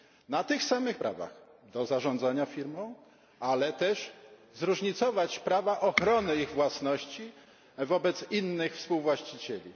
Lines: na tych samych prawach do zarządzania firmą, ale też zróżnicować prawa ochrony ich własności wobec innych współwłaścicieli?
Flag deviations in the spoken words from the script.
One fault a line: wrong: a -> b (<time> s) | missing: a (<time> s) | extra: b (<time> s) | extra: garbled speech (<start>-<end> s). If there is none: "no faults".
no faults